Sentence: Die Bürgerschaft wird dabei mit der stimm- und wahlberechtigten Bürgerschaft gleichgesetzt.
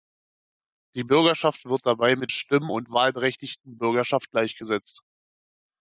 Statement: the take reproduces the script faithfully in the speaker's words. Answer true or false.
false